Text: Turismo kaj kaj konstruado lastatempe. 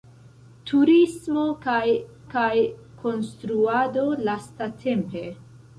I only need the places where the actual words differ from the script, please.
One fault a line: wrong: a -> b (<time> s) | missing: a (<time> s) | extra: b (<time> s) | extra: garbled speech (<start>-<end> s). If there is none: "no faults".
no faults